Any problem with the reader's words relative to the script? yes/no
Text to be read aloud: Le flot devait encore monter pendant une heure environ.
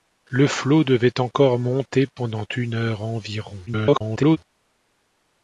yes